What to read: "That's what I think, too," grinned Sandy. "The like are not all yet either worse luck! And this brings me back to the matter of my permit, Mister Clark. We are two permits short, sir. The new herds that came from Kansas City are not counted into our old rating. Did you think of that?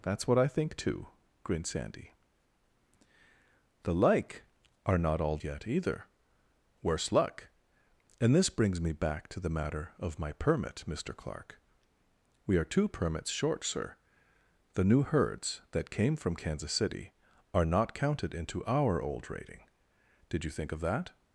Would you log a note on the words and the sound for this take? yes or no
no